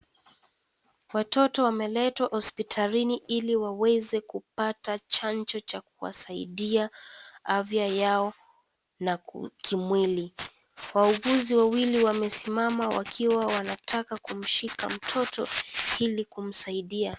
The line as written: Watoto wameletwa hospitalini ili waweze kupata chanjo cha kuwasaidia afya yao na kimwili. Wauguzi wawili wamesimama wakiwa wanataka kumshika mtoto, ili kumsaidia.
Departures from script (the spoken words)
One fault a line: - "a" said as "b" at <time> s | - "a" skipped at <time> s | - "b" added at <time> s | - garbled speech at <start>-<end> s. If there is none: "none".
none